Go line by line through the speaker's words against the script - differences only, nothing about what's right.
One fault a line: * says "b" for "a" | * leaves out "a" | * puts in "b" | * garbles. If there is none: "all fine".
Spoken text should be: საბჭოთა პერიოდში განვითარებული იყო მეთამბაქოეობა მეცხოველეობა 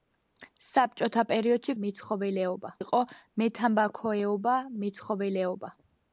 * says "მეცხოველეობა" for "განვითარებული"